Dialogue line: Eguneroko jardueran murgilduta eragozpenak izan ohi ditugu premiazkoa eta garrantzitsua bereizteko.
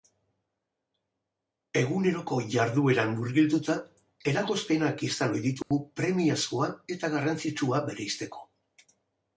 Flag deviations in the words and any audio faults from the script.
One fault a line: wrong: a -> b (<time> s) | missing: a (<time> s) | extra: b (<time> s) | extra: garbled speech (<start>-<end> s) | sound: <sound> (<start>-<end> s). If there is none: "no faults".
sound: dropout (5.6-5.7 s)